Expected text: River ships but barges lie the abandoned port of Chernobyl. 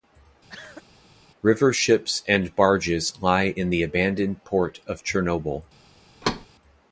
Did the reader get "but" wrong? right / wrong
wrong